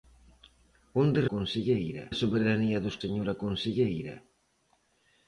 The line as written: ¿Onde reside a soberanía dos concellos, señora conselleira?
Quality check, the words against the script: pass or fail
fail